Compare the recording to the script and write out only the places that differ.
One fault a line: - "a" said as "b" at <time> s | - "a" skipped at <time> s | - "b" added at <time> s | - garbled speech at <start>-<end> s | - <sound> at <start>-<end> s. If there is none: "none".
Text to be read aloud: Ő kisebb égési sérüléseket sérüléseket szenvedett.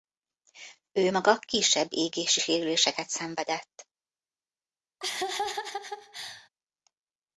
- "maga" added at 1.1 s
- "sérüléseket" skipped at 3.1 s
- laugh at 5.0-6.5 s